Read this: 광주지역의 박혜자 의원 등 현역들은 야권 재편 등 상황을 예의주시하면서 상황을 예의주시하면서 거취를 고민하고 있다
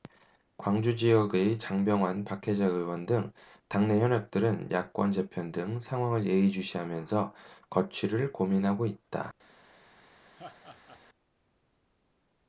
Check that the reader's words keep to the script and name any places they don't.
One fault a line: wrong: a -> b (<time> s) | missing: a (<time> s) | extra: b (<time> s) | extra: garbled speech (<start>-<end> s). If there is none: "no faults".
extra: 장병완 (1.6 s)
extra: 당내 (3.7 s)
missing: 상황을 예의주시하면서 (7.3 s)